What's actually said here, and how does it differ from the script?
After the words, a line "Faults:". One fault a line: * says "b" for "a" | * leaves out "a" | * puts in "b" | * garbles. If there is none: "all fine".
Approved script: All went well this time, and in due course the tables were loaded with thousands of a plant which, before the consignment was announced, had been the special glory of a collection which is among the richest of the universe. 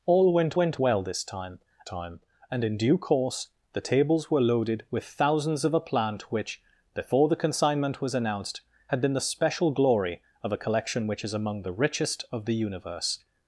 All went went well this time time, and in due course the tables were loaded with thousands of a plant which, before the consignment was announced, had been the special glory of a collection which is among the richest of the universe.
Faults:
* puts in "went"
* puts in "time"